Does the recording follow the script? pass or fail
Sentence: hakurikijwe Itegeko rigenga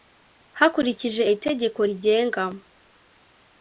pass